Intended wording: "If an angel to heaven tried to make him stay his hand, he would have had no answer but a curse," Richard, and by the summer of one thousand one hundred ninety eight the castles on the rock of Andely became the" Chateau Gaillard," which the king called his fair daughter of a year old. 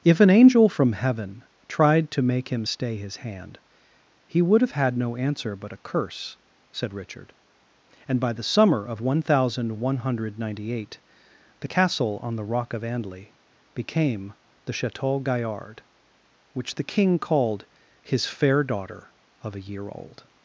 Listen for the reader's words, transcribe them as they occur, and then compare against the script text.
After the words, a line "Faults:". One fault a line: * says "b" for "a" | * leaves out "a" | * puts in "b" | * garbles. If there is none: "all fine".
"If an angel from heaven tried to make him stay his hand, he would have had no answer but a curse," said Richard, and by the summer of one thousand one hundred ninety eight the castle on the rock of Andely became the" Chateau Gaillard," which the king called his fair daughter of a year old.
Faults:
* says "from" for "to"
* puts in "said"
* says "castle" for "castles"